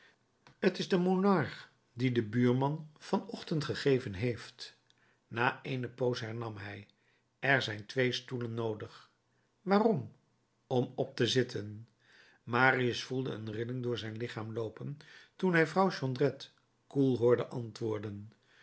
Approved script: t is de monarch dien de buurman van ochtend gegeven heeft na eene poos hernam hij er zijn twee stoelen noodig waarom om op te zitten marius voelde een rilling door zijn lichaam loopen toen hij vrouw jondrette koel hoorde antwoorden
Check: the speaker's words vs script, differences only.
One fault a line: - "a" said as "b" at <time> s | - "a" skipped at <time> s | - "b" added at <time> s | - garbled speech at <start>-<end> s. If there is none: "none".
none